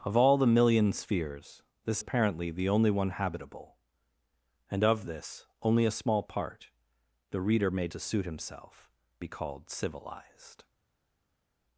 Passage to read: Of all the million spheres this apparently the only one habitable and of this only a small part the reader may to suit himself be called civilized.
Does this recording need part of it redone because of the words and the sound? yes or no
no